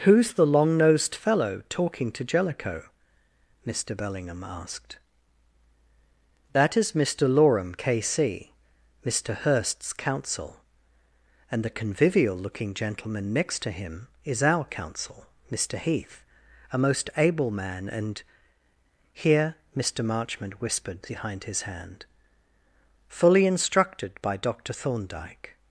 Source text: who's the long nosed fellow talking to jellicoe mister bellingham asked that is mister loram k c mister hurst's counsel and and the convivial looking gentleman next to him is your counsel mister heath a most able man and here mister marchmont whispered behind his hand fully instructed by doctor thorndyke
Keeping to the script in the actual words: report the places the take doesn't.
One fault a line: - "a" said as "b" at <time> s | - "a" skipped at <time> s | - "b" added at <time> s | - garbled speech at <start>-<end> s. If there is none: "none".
- "and" skipped at 11.6 s
- "your" said as "our" at 14.4 s